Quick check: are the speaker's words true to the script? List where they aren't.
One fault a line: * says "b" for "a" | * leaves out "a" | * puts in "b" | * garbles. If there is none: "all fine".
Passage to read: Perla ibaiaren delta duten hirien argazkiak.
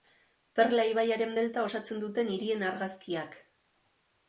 * puts in "osatzen"